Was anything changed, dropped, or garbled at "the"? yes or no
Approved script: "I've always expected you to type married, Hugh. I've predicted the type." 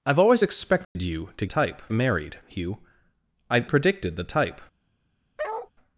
no